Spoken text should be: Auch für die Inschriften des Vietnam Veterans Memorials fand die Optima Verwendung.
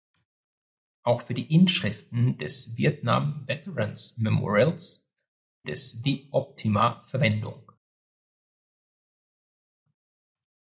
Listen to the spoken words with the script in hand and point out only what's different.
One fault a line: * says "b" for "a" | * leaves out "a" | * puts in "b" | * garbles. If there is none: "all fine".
* says "des" for "fand"